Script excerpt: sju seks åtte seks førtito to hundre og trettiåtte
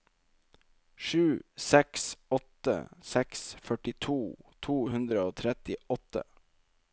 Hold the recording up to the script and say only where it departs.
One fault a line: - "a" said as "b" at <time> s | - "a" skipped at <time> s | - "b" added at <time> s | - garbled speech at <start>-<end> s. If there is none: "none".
none